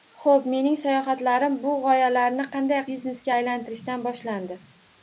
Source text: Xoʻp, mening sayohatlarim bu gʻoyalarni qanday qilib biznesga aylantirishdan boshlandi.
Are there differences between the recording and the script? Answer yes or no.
yes